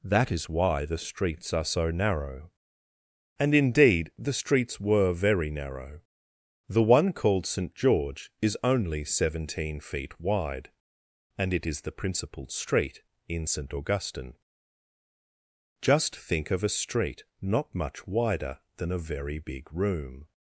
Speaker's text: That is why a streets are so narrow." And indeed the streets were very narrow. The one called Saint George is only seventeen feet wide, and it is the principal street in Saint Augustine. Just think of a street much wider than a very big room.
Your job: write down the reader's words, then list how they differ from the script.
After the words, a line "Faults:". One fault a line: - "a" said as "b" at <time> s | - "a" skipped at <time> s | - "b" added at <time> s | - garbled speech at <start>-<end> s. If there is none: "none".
That is why the streets are so narrow." And indeed the streets were very narrow. The one called Saint George is only seventeen feet wide, and it is the principal street in Saint Augustine. Just think of a street not much wider than a very big room.
Faults:
- "a" said as "the" at 0.8 s
- "not" added at 17.4 s